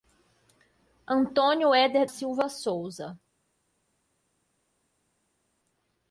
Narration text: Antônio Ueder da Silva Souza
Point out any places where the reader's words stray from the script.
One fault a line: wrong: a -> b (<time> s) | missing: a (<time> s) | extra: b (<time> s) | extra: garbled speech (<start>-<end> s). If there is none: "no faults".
missing: da (2.1 s)